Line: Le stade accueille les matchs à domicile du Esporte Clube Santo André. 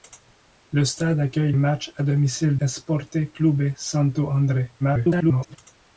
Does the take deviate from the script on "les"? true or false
true